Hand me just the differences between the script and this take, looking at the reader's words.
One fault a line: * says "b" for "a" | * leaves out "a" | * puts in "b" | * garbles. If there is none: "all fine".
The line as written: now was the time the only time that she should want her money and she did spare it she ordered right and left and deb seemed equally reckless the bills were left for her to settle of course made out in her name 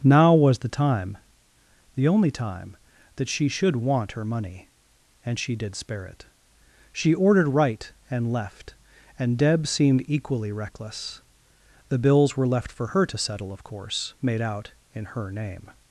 all fine